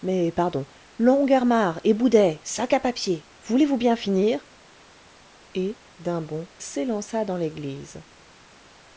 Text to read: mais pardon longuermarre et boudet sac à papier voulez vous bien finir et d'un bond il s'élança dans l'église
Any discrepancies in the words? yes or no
yes